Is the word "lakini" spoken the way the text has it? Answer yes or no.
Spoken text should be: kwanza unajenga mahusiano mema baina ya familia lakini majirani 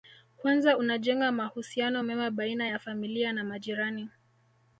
no